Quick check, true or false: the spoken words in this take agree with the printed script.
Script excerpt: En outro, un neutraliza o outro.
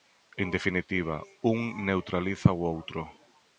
false